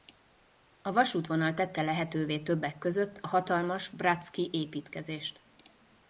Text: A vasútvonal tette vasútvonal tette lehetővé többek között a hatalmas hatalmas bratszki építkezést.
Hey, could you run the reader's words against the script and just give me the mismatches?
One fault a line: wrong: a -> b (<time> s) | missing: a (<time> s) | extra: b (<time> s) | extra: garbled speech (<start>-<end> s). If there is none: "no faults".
missing: vasútvonal tette (1.8 s)
missing: hatalmas (3.9 s)